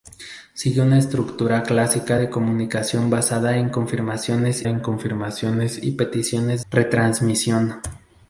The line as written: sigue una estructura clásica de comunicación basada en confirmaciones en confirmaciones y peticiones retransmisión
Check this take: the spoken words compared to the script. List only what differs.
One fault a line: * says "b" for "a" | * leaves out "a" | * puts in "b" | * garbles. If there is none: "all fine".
all fine